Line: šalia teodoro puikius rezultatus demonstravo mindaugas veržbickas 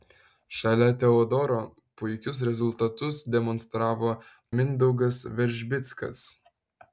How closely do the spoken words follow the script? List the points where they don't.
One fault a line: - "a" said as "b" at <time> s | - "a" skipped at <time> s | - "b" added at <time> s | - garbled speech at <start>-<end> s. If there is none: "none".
none